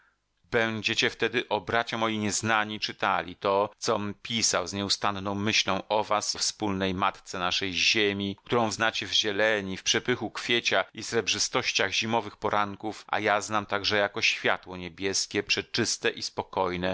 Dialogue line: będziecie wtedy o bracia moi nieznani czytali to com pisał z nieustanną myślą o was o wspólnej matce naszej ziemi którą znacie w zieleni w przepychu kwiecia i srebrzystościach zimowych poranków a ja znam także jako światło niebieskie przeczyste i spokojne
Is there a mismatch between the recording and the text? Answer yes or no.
no